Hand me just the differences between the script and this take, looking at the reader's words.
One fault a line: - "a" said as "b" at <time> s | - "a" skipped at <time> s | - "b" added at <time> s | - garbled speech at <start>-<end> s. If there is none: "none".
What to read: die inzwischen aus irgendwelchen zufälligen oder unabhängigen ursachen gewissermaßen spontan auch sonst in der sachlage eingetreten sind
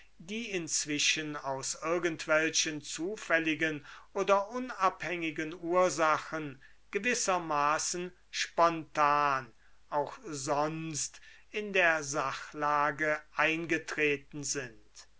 none